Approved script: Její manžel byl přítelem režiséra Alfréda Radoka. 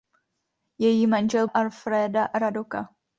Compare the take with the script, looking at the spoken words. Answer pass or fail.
fail